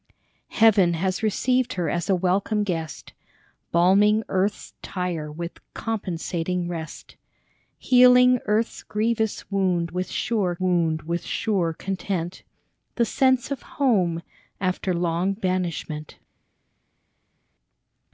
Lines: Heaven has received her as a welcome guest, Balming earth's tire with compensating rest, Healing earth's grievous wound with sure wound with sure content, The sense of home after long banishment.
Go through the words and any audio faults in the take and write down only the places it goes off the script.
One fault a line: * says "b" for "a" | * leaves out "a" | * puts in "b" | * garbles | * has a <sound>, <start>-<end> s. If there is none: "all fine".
all fine